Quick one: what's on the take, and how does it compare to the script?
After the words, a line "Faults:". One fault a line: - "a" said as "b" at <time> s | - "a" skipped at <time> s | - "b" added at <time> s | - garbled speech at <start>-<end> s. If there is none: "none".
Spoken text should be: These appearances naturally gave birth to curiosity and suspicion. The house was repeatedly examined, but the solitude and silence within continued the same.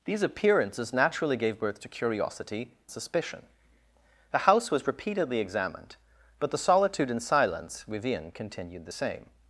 These appearances naturally gave birth to curiosity suspicion. The house was repeatedly examined, but the solitude and silence within continued the same.
Faults:
- "and" skipped at 2.7 s